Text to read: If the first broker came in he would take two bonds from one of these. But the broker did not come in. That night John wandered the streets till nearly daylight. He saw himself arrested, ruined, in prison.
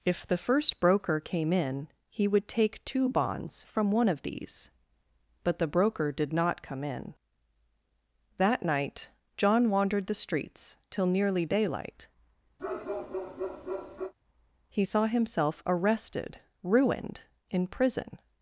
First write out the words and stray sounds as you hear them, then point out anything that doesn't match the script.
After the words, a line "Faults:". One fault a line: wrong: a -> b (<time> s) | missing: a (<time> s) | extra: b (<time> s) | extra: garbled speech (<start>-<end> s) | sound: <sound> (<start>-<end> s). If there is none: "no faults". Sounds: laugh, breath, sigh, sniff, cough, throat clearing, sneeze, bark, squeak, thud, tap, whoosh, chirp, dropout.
If the first broker came in he would take two bonds from one of these. But the broker did not come in. That night John wandered the streets till nearly daylight. He saw himself arrested, ruined, in prison.
Faults:
sound: bark (12.6-14.1 s)